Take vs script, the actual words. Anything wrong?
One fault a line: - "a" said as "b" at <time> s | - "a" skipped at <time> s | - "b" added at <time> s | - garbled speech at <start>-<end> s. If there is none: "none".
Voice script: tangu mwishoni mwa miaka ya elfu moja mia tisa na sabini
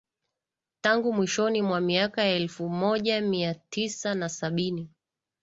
none